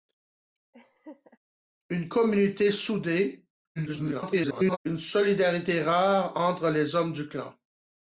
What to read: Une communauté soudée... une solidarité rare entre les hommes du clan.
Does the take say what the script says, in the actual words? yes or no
no